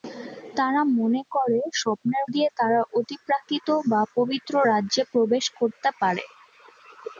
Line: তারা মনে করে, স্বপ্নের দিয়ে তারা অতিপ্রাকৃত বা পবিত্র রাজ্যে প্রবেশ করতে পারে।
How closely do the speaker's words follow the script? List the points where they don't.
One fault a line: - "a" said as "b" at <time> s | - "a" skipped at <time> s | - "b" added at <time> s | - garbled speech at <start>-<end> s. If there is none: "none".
none